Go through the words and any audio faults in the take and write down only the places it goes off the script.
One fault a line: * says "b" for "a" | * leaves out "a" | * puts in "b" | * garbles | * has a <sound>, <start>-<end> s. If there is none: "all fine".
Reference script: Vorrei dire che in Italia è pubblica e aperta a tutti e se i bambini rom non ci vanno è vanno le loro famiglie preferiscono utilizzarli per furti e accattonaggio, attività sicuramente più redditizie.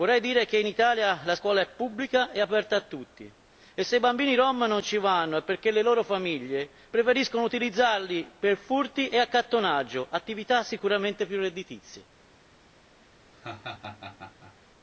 * puts in "la scuola"
* says "perché" for "vanno"
* has a laugh, 13.3-14.6 s